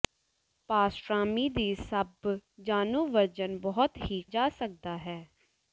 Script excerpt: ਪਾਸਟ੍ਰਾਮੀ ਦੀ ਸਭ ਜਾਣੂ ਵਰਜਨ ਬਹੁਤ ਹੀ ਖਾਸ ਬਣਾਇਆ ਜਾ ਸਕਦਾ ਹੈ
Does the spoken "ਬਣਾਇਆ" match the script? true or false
false